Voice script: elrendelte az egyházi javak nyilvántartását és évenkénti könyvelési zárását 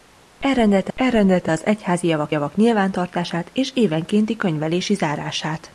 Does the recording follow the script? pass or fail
fail